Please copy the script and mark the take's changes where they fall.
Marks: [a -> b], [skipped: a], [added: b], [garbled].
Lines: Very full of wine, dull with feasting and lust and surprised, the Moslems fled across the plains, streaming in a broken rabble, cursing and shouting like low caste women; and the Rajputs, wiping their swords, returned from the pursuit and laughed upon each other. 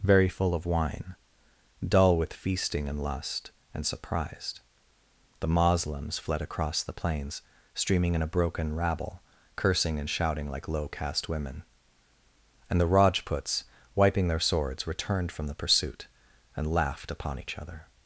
Very full of wine, dull with feasting and lust and surprised, the Moslems fled across the plains, streaming in a broken rabble, cursing and shouting like low caste women; and the Rajputs, wiping their swords, returned from the pursuit and laughed upon each other.